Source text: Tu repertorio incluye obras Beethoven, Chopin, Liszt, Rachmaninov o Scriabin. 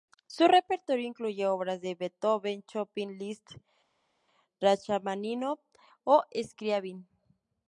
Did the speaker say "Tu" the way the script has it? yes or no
no